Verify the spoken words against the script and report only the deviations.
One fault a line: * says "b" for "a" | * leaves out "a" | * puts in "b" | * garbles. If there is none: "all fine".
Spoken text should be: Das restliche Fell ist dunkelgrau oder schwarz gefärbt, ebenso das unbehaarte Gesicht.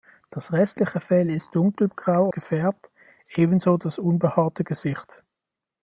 * leaves out "oder schwarz"